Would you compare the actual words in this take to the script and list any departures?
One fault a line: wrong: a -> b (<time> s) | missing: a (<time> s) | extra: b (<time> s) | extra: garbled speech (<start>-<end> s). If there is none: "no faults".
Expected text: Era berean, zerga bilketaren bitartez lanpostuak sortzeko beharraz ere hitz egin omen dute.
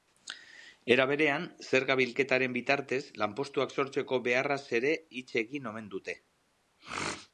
no faults